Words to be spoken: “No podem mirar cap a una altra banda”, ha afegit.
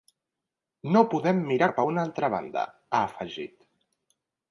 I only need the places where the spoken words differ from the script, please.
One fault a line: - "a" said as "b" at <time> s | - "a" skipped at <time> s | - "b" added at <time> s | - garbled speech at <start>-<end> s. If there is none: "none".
none